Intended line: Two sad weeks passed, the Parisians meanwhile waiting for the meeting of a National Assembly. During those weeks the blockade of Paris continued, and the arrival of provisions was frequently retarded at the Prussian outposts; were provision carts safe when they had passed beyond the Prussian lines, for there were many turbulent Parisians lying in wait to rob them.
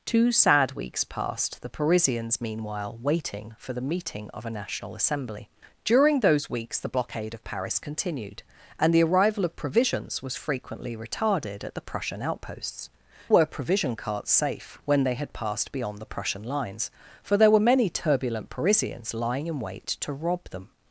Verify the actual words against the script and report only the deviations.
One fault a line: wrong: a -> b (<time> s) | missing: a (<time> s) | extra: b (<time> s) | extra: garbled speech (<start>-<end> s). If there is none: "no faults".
no faults